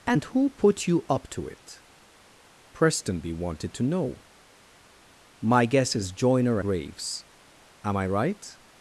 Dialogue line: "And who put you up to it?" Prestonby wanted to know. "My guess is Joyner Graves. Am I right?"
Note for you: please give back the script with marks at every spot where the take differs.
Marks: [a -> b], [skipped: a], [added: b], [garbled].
"And who put you up to it?" Prestonby wanted to know. "My guess is Joyner Graves. Am I right?"